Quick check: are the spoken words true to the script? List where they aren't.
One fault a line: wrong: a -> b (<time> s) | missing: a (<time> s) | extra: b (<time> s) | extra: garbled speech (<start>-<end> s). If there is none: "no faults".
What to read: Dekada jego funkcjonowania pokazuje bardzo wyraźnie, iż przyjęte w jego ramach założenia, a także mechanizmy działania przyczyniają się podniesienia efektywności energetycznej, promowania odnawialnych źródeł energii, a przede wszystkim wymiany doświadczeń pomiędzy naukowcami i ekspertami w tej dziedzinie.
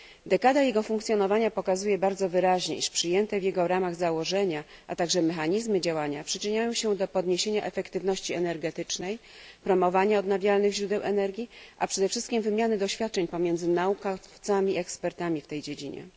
extra: do (7.0 s)